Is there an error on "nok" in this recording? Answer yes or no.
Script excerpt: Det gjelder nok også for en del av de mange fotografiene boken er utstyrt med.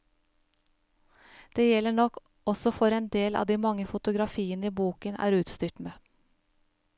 no